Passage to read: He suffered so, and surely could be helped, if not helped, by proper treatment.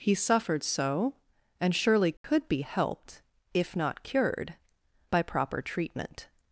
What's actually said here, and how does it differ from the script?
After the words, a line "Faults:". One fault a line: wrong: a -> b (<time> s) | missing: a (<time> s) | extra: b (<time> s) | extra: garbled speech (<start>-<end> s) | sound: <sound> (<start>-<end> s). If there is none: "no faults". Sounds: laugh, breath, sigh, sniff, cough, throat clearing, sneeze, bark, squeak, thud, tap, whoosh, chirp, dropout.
He suffered so, and surely could be helped, if not cured, by proper treatment.
Faults:
sound: dropout (2.2-2.2 s)
wrong: helped -> cured (4.0 s)